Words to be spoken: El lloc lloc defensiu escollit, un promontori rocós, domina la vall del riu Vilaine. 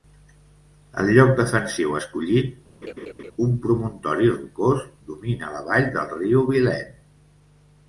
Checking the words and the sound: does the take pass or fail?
fail